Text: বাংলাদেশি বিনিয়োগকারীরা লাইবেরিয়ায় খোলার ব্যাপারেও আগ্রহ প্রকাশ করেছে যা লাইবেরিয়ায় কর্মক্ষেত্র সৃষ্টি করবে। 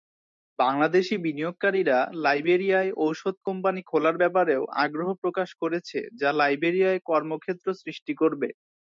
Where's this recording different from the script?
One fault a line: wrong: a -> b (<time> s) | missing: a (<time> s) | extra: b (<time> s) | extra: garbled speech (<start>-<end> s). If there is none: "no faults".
extra: ঔষধ কোম্পানি (3.0 s)